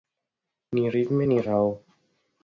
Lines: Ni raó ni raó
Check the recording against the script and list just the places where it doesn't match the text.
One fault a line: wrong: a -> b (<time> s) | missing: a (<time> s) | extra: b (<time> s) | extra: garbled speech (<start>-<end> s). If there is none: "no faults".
wrong: raó -> ritme (0.9 s)